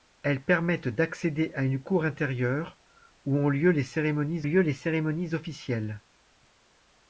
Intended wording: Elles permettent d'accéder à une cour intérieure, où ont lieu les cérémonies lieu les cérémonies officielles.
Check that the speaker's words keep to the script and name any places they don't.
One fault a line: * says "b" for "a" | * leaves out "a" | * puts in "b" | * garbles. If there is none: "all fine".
all fine